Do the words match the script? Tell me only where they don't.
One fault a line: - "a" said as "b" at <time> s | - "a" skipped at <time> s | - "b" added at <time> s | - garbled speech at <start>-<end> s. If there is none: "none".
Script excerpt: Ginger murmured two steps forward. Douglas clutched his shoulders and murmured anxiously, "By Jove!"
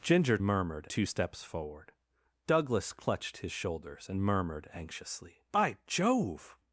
none